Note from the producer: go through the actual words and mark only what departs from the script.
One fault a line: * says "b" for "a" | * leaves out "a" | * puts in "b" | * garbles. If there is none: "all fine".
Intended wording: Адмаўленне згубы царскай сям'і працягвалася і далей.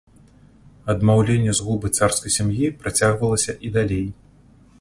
all fine